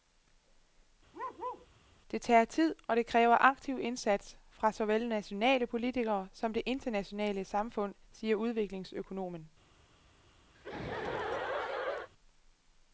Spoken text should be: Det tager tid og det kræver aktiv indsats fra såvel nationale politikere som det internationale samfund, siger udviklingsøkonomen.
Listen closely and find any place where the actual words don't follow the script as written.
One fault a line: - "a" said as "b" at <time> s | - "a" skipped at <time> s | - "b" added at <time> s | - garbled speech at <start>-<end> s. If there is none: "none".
none